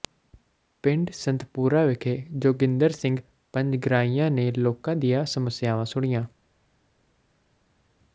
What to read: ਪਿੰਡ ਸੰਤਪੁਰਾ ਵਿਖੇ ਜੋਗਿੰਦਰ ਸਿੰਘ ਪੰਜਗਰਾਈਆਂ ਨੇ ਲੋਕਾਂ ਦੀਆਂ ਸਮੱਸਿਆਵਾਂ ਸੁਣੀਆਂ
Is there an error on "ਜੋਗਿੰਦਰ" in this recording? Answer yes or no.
no